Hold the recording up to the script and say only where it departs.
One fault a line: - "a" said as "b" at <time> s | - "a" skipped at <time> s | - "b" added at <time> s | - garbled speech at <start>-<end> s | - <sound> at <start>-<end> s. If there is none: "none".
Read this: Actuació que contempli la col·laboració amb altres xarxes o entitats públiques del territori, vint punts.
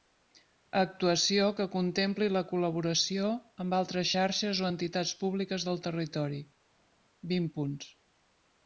none